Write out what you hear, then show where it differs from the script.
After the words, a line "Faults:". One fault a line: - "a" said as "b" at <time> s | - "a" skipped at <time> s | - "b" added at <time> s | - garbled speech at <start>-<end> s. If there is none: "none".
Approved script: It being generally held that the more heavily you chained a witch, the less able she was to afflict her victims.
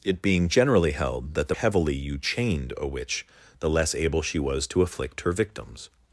It being generally held that the heavily you chained a witch, the less able she was to afflict her victims.
Faults:
- "more" skipped at 1.6 s